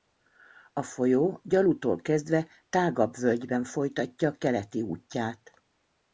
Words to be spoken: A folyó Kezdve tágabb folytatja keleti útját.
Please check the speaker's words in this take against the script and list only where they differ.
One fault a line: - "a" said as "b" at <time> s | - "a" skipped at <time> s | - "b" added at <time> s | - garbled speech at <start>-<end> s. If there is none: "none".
- "Gyalutól" added at 1.4 s
- "völgyben" added at 3.1 s